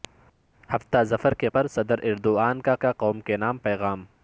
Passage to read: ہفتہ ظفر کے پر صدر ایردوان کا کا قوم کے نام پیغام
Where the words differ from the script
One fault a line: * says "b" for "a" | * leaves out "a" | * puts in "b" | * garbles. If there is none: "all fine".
all fine